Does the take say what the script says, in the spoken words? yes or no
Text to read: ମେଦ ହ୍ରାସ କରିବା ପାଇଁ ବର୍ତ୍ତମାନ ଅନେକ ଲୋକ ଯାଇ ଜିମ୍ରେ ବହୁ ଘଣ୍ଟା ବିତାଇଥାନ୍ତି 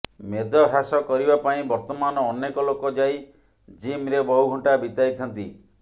yes